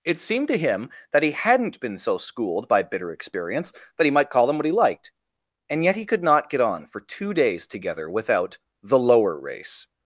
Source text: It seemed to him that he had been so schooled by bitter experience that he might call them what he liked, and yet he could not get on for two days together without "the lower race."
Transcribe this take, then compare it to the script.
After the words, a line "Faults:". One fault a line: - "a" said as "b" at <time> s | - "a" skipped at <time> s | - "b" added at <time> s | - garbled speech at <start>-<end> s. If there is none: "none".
It seemed to him that he hadn't been so schooled by bitter experience that he might call them what he liked, and yet he could not get on for two days together without "the lower race."
Faults:
- "had" said as "hadn't" at 1.3 s